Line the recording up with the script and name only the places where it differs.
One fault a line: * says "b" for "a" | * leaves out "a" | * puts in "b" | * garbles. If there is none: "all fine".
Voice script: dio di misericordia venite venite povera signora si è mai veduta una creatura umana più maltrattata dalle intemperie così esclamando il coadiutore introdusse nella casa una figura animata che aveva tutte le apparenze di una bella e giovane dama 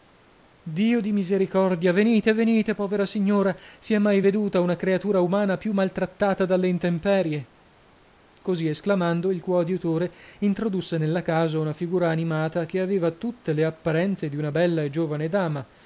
all fine